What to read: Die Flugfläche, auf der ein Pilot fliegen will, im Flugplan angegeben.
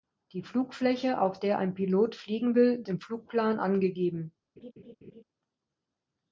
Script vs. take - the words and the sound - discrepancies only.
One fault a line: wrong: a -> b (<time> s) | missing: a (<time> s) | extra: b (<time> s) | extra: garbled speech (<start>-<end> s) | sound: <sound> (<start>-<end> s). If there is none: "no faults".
sound: laugh (4.6-5.2 s)